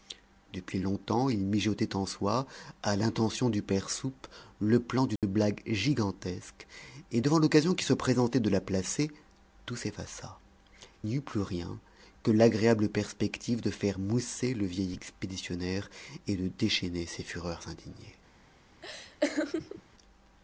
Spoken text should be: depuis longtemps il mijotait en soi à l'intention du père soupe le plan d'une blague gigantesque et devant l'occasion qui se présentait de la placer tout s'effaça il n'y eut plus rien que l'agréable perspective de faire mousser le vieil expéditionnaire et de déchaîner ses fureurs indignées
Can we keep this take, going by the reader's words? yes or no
no